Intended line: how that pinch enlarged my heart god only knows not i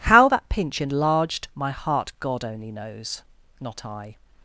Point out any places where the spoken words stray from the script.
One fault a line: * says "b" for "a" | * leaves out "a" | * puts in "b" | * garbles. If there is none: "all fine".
all fine